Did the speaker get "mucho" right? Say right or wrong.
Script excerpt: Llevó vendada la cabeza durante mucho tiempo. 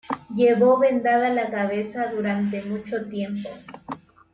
right